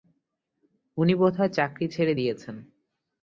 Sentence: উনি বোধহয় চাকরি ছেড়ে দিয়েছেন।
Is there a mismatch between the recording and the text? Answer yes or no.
no